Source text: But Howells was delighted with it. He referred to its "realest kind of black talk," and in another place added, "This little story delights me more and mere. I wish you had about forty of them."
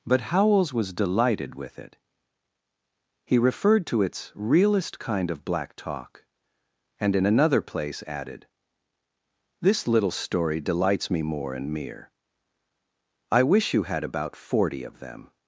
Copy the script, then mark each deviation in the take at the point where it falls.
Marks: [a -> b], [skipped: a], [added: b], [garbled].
But Howells was delighted with it. He referred to its "realest kind of black talk," and in another place added, "This little story delights me more and mere. I wish you had about forty of them."